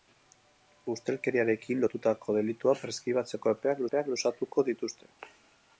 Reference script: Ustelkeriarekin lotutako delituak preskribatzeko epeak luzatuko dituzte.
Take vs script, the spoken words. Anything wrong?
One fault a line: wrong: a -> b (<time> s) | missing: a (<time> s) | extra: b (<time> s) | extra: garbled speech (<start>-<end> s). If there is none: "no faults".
extra: epeak (3.9 s)